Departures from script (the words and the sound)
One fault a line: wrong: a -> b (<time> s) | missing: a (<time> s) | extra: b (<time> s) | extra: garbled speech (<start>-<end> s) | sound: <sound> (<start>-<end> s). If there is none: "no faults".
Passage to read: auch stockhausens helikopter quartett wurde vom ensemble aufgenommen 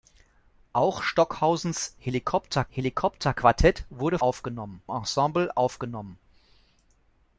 extra: helikopter (2.7 s)
wrong: vom -> aufgenommen (4.2 s)